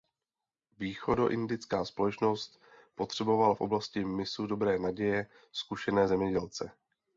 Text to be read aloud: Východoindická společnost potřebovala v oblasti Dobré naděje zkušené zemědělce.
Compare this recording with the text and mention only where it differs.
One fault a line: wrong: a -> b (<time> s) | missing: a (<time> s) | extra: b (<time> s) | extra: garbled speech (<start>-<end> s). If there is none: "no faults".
extra: mysu (4.0 s)